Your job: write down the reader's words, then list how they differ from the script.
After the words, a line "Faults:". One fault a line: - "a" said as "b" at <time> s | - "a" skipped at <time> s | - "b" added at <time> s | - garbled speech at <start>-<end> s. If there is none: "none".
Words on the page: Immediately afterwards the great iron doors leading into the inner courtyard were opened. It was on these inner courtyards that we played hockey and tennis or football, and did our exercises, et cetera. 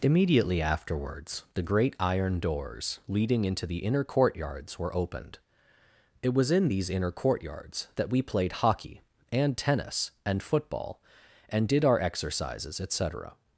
Immediately afterwards the great iron doors leading into the inner courtyards were opened. It was in these inner courtyards that we played hockey and tennis and football, and did our exercises, et cetera.
Faults:
- "courtyard" said as "courtyards" at 4.0 s
- "on" said as "in" at 6.5 s
- "or" said as "and" at 10.2 s